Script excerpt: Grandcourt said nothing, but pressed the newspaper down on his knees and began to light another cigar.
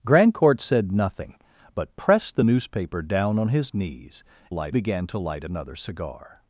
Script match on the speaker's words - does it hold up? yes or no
no